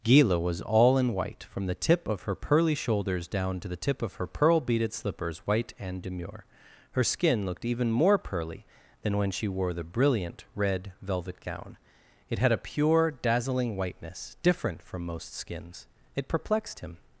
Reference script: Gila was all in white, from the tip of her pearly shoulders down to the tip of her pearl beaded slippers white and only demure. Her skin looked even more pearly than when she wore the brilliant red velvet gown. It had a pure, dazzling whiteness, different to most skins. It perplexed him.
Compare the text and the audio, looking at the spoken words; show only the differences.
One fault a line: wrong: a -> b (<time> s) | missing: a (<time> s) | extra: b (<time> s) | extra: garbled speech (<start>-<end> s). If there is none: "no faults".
missing: only (6.0 s)
wrong: to -> from (14.8 s)